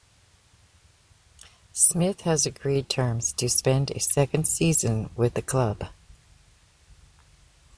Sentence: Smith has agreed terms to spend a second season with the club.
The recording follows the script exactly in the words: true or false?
true